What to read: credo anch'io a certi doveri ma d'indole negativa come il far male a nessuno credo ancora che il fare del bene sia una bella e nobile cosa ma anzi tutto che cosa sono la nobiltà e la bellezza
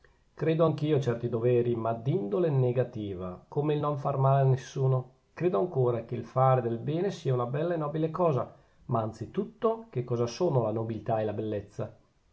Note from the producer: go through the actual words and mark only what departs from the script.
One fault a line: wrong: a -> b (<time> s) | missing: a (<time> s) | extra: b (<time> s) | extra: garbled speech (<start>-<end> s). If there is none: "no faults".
extra: non (3.8 s)